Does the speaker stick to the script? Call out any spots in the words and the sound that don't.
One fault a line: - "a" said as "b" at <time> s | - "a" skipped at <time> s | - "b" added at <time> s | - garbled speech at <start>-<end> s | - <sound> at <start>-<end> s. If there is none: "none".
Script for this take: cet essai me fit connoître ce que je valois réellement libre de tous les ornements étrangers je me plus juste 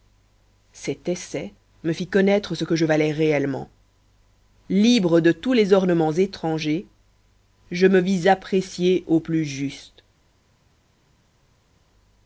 - "vis apprécié au" added at 8.0 s